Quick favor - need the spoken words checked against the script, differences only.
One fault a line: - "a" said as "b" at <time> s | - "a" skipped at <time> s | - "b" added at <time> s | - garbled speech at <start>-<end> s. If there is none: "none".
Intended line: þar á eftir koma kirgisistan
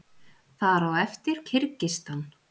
- "koma" skipped at 1.4 s